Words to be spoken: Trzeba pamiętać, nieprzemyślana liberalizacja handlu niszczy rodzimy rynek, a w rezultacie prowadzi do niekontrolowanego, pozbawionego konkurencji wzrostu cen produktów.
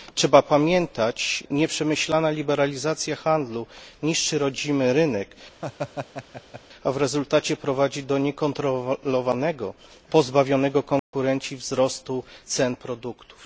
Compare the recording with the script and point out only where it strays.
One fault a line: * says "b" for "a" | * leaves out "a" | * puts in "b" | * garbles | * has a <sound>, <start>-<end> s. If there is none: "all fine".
* has a laugh, 5.6-6.6 s
* has a dropout, 11.0-11.1 s